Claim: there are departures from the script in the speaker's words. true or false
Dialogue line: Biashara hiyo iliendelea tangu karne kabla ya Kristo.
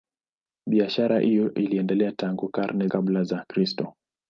false